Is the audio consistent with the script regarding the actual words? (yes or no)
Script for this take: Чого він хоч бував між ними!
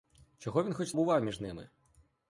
yes